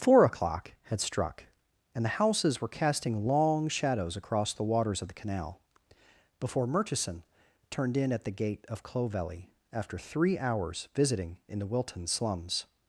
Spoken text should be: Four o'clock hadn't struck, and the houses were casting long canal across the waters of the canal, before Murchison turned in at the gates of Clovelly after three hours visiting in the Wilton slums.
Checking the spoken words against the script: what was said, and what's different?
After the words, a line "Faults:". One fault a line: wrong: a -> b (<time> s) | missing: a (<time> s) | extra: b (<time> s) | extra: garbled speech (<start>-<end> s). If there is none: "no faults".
Four o'clock had struck, and the houses were casting long shadows across the waters of the canal, before Murchison turned in at the gate of Clovelly after three hours visiting in the Wilton slums.
Faults:
wrong: hadn't -> had (0.8 s)
wrong: canal -> shadows (3.7 s)
wrong: gates -> gate (8.3 s)